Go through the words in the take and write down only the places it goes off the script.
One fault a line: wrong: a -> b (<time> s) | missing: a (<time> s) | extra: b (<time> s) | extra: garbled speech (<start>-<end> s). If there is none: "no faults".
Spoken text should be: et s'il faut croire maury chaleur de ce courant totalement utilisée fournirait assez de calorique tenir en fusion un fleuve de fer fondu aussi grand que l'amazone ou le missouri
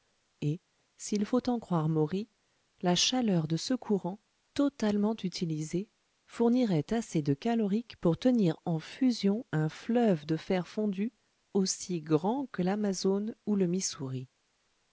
extra: en (1.5 s)
extra: la (2.8 s)
extra: pour (8.0 s)